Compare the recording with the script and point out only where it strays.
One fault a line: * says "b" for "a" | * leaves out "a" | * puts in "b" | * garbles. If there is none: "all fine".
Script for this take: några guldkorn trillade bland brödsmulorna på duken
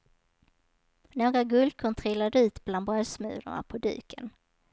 * puts in "ut"